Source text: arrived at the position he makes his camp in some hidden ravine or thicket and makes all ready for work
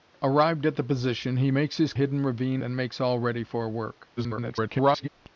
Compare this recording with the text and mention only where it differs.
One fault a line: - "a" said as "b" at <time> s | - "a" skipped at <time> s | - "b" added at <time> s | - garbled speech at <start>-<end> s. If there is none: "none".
- "camp in some" skipped at 1.9 s
- "or thicket" skipped at 2.6 s
- garbled speech at 4.2-5.1 s